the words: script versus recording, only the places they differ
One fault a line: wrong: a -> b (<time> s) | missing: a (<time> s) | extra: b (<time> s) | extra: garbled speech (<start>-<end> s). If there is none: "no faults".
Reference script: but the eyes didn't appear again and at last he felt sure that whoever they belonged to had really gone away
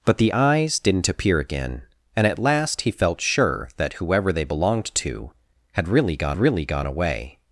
extra: really gone (6.4 s)